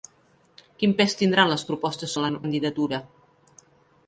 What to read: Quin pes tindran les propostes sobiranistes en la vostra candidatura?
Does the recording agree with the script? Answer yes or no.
no